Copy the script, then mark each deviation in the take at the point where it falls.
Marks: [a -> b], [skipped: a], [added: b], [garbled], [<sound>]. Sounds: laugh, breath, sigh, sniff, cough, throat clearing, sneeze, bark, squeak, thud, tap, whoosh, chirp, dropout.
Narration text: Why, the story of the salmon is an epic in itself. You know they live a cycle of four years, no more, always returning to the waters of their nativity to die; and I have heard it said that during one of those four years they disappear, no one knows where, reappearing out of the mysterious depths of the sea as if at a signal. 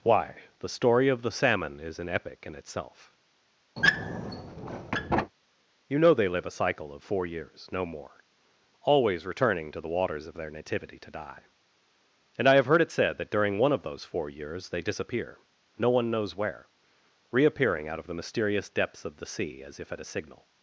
Why, the story of the salmon is an epic in itself. [squeak] You know they live a cycle of four years, no more, always returning to the waters of their nativity to die; and I have heard it said that during one of those four years they disappear, no one knows where, reappearing out of the mysterious depths of the sea as if at a signal.